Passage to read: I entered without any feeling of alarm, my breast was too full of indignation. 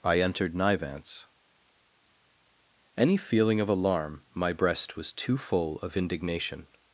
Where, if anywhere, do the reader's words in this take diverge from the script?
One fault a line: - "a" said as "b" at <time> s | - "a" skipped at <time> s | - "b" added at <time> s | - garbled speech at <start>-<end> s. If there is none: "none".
- "without" said as "nivance" at 0.6 s